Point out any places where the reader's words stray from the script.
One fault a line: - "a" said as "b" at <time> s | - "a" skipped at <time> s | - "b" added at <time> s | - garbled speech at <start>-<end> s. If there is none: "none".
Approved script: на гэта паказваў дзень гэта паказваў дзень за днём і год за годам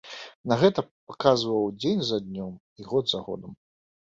- "гэта паказваў дзень" skipped at 2.0 s